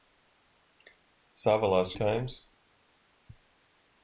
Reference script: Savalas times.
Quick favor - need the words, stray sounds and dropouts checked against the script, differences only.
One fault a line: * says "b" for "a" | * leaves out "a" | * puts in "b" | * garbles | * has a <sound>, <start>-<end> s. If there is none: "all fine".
all fine